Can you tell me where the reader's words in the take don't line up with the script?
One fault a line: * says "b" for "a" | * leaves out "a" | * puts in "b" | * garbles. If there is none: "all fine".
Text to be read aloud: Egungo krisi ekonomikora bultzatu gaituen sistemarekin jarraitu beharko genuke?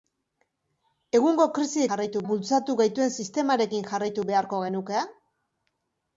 * says "jarraitu" for "ekonomikora"